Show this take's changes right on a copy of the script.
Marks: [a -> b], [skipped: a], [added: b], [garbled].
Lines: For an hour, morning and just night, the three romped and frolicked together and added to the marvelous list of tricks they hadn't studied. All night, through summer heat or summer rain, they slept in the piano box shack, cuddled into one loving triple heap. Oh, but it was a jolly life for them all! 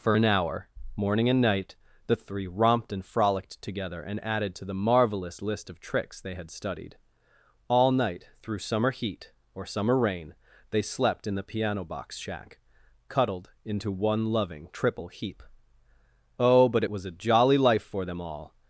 For an hour, morning and [skipped: just] night, the three romped and frolicked together and added to the marvelous list of tricks they [hadn't -> had] studied. All night, through summer heat or summer rain, they slept in the piano box shack, cuddled into one loving triple heap. Oh, but it was a jolly life for them all!